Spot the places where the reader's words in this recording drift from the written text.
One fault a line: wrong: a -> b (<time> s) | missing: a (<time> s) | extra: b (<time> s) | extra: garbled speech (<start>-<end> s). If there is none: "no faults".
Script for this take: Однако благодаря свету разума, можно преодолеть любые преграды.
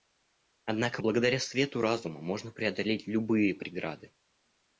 no faults